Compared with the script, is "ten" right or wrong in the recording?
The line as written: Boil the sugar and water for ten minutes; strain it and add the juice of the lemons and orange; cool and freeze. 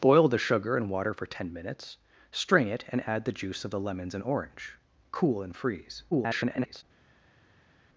right